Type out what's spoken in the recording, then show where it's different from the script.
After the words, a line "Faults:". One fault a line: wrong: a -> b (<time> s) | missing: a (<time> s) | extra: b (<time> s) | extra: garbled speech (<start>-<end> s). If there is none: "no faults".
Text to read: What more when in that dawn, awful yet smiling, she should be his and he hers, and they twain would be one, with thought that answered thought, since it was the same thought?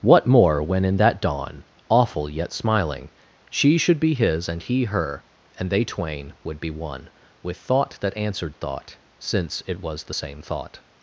What more when in that dawn, awful yet smiling, she should be his and he her, and they twain would be one, with thought that answered thought, since it was the same thought?
Faults:
wrong: hers -> her (4.8 s)